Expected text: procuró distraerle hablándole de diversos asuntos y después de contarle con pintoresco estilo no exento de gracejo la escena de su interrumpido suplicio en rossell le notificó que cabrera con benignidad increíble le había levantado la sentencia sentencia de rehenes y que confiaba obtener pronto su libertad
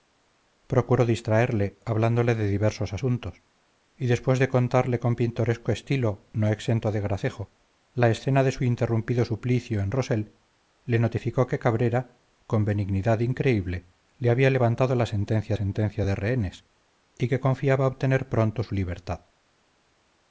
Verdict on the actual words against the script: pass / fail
pass